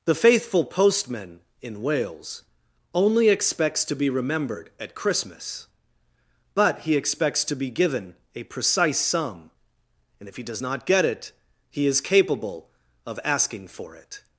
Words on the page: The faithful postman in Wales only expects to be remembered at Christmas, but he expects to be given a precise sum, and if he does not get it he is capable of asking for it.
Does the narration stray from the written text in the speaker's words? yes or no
no